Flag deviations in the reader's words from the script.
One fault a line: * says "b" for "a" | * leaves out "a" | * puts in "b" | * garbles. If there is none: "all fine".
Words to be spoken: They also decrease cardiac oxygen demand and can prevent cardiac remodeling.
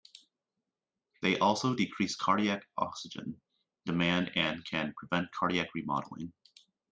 all fine